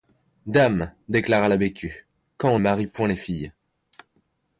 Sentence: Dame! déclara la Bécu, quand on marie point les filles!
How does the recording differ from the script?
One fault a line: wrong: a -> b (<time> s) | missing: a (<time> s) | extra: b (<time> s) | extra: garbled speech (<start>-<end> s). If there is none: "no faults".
no faults